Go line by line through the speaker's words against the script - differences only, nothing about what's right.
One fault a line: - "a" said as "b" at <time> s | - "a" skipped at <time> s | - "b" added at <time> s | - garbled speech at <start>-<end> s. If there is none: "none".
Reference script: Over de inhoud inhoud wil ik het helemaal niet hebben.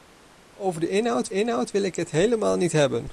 none